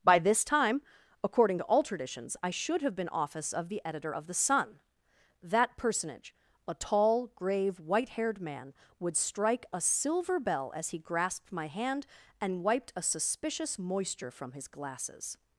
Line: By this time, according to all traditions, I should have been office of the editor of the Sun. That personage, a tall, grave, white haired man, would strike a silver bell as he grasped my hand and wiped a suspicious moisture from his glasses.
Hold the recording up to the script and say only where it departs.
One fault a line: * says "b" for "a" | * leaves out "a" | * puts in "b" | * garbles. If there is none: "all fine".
all fine